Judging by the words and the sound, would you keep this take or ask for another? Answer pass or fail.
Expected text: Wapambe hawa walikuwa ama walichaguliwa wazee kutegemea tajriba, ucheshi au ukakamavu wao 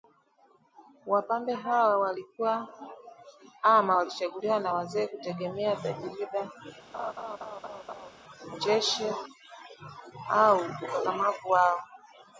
fail